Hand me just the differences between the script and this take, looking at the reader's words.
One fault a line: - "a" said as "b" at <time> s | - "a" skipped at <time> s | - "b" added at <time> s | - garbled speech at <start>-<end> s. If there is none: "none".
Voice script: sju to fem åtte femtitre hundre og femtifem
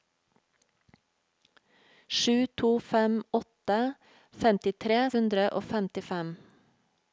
none